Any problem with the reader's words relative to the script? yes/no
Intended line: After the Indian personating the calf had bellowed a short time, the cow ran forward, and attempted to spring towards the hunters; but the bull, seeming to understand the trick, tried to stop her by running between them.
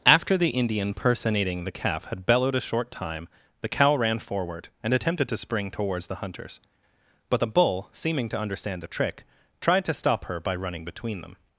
no